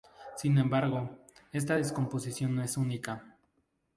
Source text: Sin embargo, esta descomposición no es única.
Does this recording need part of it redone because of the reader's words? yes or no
no